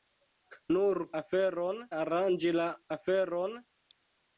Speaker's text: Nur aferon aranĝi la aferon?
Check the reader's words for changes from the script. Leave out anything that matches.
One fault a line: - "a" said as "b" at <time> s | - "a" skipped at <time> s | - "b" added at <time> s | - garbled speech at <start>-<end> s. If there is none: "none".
none